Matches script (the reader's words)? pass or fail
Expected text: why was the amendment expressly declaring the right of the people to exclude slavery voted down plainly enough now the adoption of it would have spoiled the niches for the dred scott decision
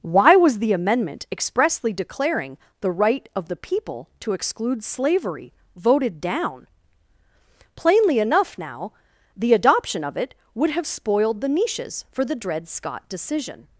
pass